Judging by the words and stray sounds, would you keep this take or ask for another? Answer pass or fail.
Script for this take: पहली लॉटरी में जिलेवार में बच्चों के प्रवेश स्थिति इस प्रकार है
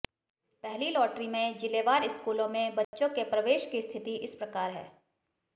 fail